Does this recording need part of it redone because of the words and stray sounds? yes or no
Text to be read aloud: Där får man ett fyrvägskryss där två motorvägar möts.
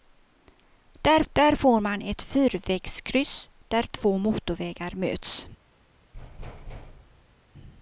yes